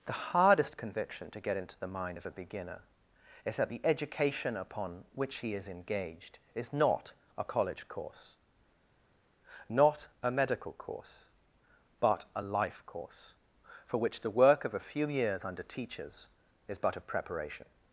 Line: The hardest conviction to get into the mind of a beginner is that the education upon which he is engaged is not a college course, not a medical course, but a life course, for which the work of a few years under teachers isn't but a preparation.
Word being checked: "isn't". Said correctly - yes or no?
no